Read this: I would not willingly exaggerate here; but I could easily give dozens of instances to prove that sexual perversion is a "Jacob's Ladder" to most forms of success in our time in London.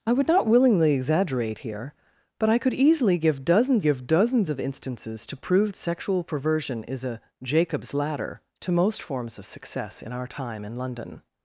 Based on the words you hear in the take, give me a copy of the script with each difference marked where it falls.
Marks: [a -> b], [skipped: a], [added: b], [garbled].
I would not willingly exaggerate here; but I could easily give dozens [added: give dozens] of instances to prove [skipped: that] sexual perversion is a "Jacob's Ladder" to most forms of success in our time in London.